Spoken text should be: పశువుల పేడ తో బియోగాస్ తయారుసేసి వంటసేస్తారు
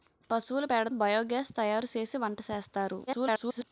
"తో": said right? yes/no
no